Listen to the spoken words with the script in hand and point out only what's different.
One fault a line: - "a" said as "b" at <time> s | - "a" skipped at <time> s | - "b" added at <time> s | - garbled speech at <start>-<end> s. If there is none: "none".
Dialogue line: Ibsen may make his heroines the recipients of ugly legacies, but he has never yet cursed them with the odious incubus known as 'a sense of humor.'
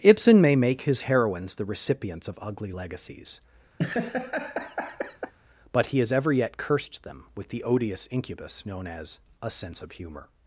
- "never" said as "ever" at 6.1 s